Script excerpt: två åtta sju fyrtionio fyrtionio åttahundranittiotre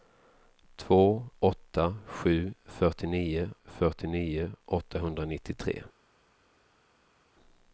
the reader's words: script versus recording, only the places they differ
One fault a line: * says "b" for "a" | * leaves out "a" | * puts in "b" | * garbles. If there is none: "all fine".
all fine